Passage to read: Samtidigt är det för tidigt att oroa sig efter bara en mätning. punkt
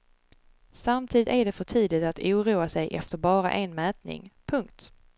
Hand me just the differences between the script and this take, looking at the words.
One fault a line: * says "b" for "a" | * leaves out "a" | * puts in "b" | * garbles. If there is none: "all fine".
all fine